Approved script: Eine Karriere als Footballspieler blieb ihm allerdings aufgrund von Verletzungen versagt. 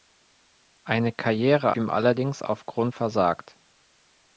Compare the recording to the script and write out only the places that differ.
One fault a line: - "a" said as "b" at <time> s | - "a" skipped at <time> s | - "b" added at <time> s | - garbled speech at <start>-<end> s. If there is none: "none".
- "als Footballspieler blieb" skipped at 1.7 s
- "von Verletzungen" skipped at 2.9 s